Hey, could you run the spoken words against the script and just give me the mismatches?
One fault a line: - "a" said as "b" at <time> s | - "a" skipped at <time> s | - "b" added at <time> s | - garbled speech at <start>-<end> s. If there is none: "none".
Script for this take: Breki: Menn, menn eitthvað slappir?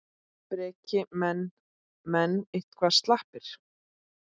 none